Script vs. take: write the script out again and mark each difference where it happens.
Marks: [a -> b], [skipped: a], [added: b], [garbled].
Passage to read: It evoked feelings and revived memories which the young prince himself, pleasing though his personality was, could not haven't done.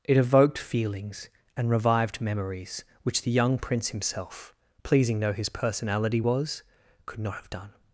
It evoked feelings and revived memories which the young prince himself, pleasing though his personality was, could not [haven't -> have] done.